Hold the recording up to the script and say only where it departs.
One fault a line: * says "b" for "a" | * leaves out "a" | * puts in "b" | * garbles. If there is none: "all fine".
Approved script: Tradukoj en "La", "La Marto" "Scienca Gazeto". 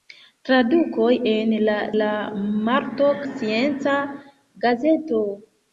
all fine